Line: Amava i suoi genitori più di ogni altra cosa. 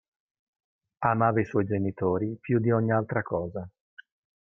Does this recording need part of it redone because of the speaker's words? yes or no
no